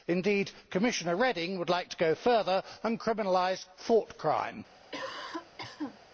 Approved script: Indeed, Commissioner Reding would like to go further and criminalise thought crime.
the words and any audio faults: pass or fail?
fail